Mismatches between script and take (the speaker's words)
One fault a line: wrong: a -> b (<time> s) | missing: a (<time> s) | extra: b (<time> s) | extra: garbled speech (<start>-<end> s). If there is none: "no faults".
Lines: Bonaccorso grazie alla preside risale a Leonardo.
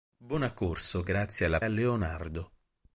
missing: preside risale (1.6 s)